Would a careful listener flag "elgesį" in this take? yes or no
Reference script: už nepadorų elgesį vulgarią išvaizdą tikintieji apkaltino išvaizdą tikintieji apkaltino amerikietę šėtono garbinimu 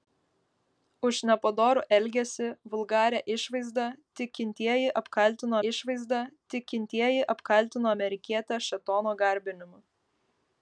no